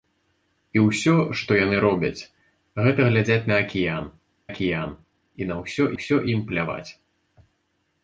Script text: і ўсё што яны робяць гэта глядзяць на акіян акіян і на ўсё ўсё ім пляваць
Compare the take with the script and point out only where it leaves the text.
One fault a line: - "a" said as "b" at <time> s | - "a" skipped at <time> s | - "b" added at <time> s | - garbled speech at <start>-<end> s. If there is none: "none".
none